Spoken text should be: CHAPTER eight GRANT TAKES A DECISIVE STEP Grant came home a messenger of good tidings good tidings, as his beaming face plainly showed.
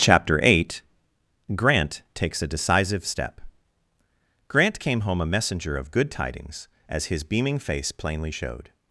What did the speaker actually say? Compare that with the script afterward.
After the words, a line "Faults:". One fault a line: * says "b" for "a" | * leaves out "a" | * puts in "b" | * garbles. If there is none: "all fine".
CHAPTER eight GRANT TAKES A DECISIVE STEP Grant came home a messenger of good tidings, as his beaming face plainly showed.
Faults:
* leaves out "good tidings"